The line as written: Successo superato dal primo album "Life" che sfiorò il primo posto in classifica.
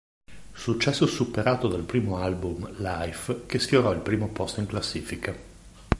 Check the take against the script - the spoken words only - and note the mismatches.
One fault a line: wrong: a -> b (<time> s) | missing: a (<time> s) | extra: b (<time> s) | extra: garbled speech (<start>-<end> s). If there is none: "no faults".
no faults